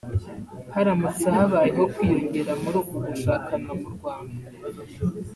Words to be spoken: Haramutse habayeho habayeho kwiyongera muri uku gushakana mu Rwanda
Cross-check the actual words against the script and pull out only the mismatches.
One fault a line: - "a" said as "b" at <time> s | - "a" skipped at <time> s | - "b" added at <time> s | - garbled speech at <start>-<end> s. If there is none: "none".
- "habayeho" skipped at 1.8 s